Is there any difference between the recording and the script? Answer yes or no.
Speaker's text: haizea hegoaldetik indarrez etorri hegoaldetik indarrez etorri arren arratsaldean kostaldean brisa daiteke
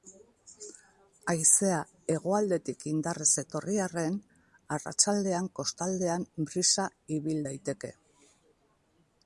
yes